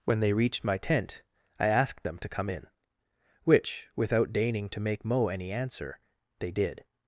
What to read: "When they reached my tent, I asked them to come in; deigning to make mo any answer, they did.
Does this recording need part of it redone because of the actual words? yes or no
yes